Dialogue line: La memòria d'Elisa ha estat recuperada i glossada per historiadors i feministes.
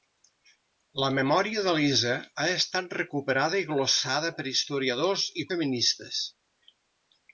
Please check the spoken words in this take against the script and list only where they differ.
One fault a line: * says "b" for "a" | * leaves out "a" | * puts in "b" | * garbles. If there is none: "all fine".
all fine